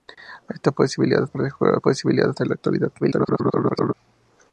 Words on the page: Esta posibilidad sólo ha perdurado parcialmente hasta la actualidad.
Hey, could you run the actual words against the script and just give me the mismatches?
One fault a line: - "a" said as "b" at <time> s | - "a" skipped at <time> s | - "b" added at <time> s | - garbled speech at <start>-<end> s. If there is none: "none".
- "sólo" skipped at 1.3 s
- "parcialmente" said as "posibilidad" at 1.8 s
- garbled speech at 3.0-3.9 s